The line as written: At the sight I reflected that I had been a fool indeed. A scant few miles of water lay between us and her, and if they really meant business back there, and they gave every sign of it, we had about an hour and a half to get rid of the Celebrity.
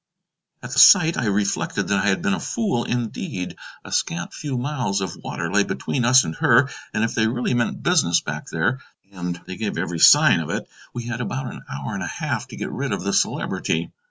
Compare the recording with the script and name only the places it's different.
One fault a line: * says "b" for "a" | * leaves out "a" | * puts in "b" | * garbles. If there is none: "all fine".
all fine